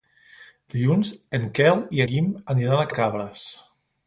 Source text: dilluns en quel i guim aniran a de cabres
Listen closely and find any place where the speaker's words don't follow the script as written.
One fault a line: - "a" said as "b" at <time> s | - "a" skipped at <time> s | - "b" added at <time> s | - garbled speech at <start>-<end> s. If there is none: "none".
none